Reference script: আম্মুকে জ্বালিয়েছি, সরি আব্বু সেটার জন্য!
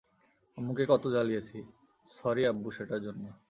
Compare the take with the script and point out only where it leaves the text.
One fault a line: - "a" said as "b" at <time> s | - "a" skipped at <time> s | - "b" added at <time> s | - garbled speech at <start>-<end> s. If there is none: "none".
- "কত" added at 0.9 s